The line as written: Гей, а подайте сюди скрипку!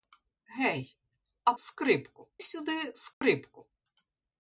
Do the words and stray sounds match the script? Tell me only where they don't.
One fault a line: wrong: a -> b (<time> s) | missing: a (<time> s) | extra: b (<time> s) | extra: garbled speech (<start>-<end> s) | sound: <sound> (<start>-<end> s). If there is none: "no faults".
wrong: подайте -> скрипку (1.6 s)
sound: dropout (3.1-3.2 s)